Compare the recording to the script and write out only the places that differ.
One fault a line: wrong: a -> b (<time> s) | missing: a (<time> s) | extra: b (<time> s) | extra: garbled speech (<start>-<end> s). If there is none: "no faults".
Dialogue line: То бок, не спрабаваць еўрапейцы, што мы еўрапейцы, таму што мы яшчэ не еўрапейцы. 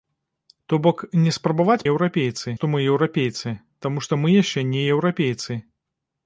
no faults